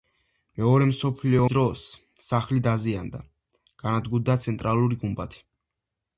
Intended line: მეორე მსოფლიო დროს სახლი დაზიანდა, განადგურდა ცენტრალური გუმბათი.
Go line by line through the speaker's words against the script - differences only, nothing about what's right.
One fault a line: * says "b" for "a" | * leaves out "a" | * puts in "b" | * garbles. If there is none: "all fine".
all fine